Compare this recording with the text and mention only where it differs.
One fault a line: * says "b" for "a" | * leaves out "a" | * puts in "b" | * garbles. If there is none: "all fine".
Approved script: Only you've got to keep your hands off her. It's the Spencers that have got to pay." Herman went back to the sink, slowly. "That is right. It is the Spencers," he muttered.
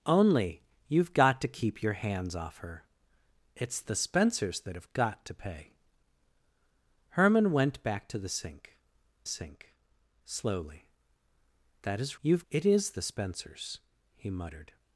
* puts in "sink"
* says "you've" for "right"